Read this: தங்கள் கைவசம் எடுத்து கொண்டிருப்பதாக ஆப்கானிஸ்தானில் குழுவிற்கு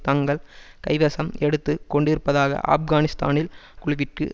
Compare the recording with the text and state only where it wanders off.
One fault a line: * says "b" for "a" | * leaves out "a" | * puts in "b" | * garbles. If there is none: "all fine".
all fine